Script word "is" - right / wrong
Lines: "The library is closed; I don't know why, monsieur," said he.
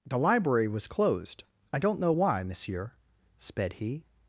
wrong